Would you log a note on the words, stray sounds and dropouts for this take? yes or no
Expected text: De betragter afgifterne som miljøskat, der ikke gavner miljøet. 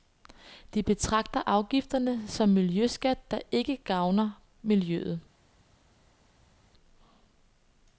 no